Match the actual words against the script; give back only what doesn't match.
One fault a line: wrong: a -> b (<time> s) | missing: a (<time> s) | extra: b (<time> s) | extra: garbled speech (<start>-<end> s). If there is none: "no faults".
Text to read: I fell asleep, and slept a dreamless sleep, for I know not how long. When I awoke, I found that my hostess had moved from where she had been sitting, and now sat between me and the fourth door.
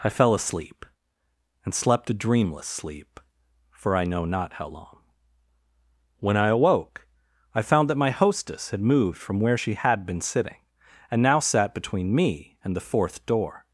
no faults